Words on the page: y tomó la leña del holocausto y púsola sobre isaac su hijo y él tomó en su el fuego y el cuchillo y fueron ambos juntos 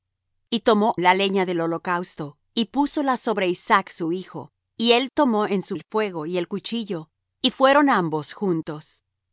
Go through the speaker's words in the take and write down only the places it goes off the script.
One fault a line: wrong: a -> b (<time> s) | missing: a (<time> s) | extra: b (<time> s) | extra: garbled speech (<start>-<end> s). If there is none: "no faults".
no faults